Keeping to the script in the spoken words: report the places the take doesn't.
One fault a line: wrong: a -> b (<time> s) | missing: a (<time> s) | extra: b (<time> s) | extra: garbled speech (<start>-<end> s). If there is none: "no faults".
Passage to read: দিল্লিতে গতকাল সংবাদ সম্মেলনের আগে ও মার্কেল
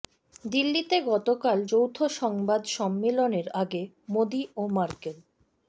extra: যৌথ (1.7 s)
extra: মোদি (4.1 s)